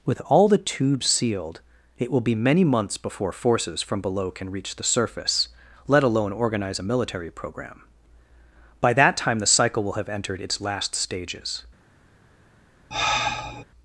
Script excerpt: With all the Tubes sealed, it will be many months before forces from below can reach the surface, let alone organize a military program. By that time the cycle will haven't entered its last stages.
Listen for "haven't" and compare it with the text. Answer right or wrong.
wrong